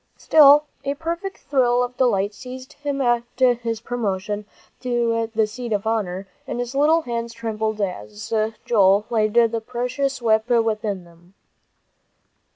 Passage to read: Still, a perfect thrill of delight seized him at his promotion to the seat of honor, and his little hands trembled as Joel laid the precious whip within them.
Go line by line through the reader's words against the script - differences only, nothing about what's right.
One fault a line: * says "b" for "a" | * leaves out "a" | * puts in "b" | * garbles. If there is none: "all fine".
all fine